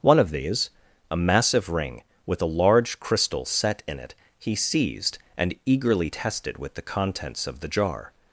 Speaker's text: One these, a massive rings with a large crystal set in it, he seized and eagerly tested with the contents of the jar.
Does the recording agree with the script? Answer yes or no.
no